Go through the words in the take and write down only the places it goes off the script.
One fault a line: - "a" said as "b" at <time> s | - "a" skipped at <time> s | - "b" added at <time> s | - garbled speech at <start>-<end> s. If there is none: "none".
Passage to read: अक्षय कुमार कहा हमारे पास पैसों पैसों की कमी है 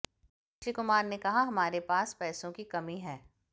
- "ने" added at 1.0 s
- "पैसों" skipped at 2.5 s